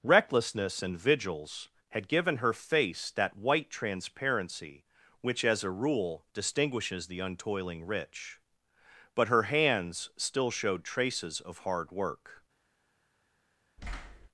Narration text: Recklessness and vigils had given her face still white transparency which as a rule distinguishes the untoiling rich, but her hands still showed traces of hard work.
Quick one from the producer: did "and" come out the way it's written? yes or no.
yes